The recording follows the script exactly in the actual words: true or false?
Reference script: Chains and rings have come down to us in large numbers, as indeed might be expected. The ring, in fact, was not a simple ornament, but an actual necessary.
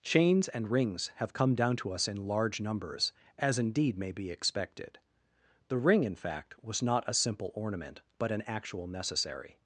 false